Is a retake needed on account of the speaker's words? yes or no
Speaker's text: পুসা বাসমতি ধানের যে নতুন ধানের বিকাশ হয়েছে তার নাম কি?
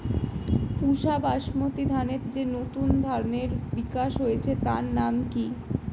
no